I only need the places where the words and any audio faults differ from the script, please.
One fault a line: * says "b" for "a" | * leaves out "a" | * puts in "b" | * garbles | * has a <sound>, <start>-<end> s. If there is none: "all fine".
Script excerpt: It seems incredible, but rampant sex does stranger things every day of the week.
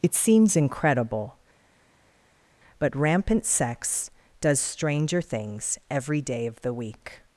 all fine